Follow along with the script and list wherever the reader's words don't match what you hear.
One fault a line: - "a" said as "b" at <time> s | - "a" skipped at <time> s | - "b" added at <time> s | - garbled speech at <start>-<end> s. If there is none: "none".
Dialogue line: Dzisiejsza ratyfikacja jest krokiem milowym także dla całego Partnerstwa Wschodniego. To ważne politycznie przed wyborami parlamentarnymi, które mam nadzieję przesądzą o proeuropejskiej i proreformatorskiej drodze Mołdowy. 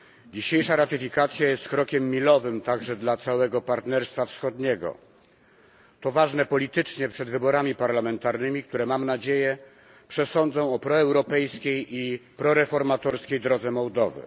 none